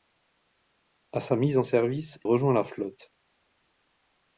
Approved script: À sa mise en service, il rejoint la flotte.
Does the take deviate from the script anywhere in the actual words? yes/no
yes